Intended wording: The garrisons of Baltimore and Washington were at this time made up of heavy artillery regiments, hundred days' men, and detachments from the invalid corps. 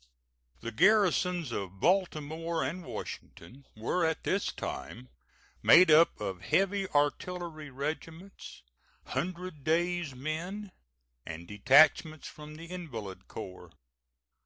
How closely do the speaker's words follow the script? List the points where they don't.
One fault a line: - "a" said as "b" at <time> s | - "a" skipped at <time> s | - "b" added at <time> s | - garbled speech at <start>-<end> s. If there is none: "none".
none